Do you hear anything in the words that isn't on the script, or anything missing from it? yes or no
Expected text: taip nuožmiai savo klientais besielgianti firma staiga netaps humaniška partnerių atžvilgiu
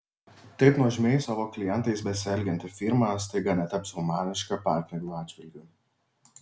no